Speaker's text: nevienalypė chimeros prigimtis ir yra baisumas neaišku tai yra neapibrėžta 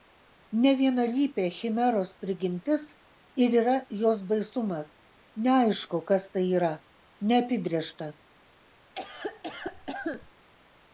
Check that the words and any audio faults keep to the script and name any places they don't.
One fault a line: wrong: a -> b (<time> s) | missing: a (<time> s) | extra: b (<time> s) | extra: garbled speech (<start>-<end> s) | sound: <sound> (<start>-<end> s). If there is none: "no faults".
extra: jos (4.0 s)
extra: kas (6.1 s)
sound: cough (8.9-10.3 s)